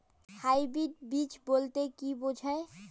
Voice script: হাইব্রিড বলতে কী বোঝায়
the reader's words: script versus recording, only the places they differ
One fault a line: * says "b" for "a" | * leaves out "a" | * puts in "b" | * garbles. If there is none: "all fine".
* puts in "বীজ"